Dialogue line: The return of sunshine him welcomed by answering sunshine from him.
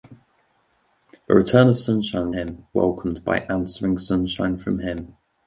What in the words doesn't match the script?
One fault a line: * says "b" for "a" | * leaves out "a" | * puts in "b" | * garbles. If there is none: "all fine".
all fine